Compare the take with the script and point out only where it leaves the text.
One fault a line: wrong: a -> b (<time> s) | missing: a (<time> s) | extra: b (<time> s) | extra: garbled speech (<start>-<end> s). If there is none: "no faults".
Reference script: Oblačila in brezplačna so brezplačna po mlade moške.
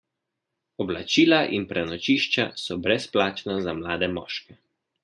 wrong: brezplačna -> prenočišča (1.7 s)
wrong: po -> za (3.6 s)